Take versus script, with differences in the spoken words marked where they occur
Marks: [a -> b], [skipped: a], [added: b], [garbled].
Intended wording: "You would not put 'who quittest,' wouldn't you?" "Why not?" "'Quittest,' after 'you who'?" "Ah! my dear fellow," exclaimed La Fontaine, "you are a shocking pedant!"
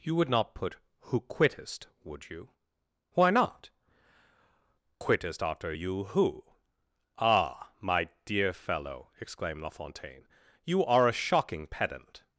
"You would not put 'who quittest,' [wouldn't -> would] you?" "Why not?" "'Quittest,' after 'you who'?" "Ah! my dear fellow," exclaimed La Fontaine, "you are a shocking pedant!"